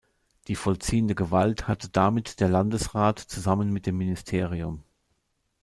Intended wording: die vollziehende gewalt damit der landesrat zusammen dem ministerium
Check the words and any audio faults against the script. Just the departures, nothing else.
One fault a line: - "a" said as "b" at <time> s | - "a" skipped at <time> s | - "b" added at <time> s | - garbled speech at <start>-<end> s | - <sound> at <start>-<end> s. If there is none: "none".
- "hatte" added at 1.7 s
- "mit" added at 3.7 s